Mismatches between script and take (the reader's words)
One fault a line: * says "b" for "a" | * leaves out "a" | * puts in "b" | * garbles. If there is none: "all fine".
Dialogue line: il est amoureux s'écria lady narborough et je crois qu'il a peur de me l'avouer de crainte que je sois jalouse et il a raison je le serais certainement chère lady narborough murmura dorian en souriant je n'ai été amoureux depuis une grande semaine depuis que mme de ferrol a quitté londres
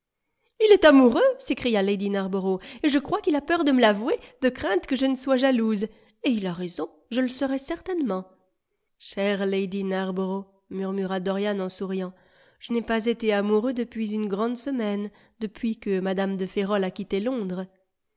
* puts in "ne"
* puts in "pas"